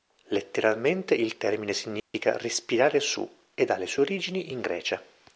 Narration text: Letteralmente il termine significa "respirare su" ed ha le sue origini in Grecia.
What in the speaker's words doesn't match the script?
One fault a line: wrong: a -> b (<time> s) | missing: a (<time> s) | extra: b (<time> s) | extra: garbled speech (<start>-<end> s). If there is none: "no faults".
no faults